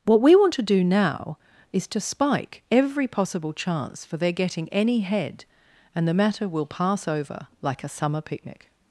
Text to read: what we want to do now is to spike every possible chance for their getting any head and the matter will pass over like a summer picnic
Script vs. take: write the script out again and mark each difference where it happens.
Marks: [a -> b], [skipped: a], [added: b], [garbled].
what we want to do now is to spike every possible chance for their getting any head and the matter will pass over like a summer picnic